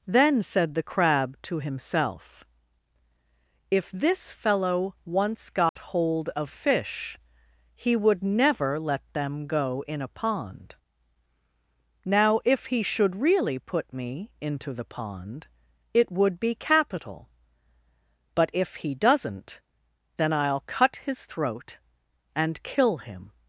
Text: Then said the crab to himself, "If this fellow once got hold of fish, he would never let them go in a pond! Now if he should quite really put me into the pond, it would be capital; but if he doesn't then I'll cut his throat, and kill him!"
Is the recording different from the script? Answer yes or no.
yes